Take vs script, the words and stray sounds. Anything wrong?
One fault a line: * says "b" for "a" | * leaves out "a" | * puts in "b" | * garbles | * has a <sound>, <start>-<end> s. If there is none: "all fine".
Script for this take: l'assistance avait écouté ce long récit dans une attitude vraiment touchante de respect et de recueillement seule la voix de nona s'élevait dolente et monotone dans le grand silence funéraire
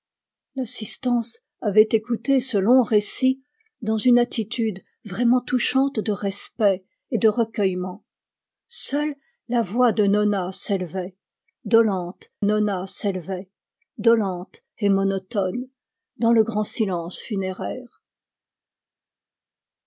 * puts in "nona s'élevait dolente"